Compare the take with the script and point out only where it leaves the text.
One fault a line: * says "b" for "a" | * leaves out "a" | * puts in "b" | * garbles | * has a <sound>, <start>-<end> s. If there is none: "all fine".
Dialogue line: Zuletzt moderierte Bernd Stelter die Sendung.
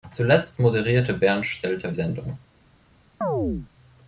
* leaves out "die"
* has a chirp, 3.2-3.7 s